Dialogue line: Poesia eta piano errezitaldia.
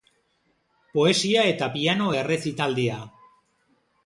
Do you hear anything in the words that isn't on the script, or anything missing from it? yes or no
no